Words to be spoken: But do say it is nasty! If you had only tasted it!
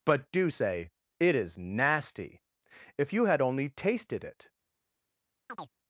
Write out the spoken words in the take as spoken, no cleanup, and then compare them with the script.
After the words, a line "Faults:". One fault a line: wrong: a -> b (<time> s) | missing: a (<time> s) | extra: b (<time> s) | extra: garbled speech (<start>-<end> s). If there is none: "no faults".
But do say it is nasty! If you had only tasted it!
Faults:
no faults